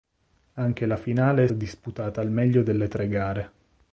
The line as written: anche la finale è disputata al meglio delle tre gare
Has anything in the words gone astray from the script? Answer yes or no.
no